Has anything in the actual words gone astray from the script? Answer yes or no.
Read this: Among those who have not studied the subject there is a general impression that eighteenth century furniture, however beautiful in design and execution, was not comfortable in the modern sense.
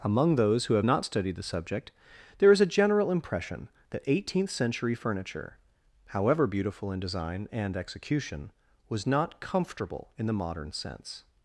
no